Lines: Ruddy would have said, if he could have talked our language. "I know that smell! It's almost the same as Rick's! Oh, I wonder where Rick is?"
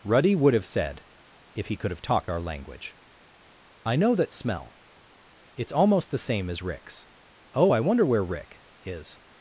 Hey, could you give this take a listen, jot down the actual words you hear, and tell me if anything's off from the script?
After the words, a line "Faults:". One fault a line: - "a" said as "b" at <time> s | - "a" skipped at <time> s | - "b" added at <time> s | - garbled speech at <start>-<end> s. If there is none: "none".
Ruddy would have said, if he could have talked our language. "I know that smell! It's almost the same as Rick's! Oh, I wonder where Rick is?"
Faults:
none